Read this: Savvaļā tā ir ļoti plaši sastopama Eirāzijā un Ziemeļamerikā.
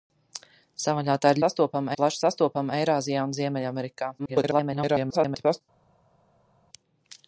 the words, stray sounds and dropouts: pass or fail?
fail